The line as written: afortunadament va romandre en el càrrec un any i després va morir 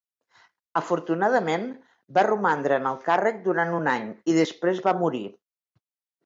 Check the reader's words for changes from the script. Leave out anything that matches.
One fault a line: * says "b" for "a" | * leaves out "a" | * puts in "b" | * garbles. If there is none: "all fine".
* puts in "durant"